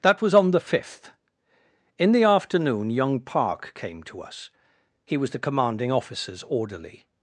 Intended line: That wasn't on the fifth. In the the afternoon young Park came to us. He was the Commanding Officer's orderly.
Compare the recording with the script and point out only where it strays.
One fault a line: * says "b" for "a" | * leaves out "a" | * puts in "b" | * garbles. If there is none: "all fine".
* says "was" for "wasn't"
* leaves out "the"